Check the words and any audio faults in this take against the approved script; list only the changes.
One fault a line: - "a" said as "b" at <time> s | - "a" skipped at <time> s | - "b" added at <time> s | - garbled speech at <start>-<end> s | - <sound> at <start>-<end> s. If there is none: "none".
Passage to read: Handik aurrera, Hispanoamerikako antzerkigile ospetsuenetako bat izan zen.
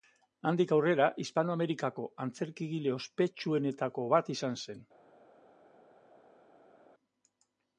none